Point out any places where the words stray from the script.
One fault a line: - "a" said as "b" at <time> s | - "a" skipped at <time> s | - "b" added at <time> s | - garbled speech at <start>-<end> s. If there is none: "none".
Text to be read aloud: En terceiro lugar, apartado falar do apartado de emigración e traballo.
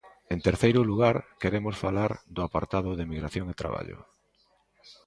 - "apartado" said as "queremos" at 1.4 s